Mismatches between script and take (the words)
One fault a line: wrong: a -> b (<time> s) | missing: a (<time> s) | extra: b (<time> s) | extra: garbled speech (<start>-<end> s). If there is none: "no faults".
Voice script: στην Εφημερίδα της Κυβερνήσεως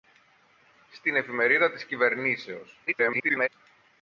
extra: garbled speech (2.9-3.5 s)